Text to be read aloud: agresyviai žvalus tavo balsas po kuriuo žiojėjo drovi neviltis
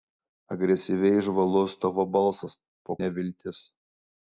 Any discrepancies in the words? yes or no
yes